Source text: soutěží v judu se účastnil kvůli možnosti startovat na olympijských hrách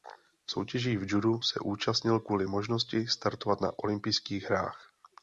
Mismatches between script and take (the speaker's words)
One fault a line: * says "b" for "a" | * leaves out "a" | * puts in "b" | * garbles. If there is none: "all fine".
all fine